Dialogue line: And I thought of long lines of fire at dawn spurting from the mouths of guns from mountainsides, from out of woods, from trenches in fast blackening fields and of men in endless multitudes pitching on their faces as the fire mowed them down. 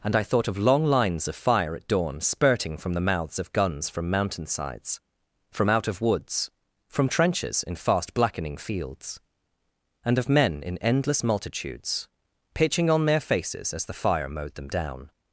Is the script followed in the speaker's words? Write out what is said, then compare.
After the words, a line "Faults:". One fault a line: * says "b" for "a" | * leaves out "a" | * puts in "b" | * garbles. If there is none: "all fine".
And I thought of long lines of fire at dawn spurting from the mouths of guns from mountainsides, from out of woods, from trenches in fast blackening fields and of men in endless multitudes pitching on their faces as the fire mowed them down.
Faults:
all fine